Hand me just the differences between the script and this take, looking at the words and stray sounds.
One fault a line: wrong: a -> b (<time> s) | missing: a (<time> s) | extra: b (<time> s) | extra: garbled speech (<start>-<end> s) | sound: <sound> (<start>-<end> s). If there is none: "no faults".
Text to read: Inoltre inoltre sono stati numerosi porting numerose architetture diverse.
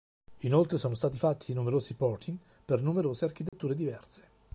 missing: inoltre (0.8 s)
extra: fatti (1.2 s)
extra: per (2.6 s)
sound: dropout (3.5-3.5 s)